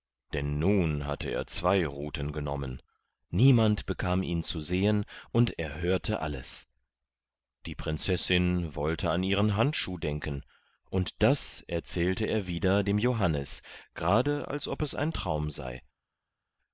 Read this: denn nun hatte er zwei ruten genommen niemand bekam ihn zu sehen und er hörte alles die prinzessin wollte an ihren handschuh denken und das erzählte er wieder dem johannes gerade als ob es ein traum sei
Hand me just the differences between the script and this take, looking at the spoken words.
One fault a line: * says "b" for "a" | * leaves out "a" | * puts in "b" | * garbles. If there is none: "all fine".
all fine